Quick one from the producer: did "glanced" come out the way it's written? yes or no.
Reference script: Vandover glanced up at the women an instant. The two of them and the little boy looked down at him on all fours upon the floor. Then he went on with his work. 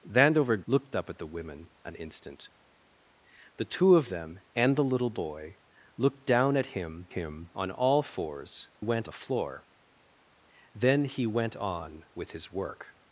no